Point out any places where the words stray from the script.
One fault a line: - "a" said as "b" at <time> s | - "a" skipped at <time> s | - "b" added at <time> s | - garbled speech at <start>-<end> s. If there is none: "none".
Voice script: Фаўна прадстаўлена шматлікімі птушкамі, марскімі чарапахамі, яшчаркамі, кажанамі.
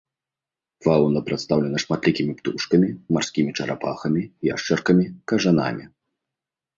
none